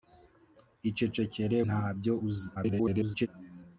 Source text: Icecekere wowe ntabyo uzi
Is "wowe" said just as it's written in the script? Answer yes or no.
no